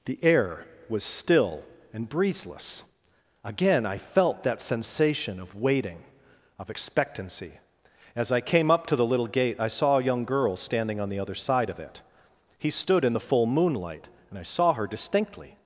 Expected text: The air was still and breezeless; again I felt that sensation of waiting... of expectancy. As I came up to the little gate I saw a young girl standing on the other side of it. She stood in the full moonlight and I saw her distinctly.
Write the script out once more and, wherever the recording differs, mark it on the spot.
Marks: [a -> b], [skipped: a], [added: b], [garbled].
The air was still and breezeless; again I felt that sensation of waiting... of expectancy. As I came up to the little gate I saw a young girl standing on the other side of it. [She -> He] stood in the full moonlight and I saw her distinctly.